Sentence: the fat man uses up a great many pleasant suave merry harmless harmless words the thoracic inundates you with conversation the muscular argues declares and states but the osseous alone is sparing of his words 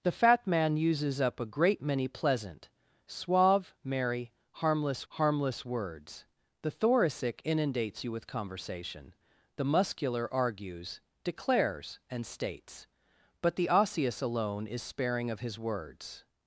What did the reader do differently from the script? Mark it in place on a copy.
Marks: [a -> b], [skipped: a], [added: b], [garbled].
the fat man uses up a great many pleasant suave merry harmless harmless words the thoracic inundates you with conversation the muscular argues declares and states but the osseous alone is sparing of his words